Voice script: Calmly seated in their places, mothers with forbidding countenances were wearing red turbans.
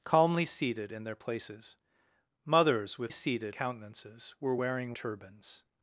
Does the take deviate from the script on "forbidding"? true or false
true